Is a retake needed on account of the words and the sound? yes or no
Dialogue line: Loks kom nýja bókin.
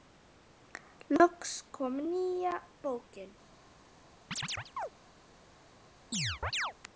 yes